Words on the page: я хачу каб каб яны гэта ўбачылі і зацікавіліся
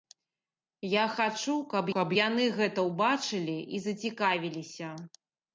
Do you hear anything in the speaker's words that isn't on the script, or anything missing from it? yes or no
no